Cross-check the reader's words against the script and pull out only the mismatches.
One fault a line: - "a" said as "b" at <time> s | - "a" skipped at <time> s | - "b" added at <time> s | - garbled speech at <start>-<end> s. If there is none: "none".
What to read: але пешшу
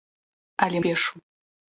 none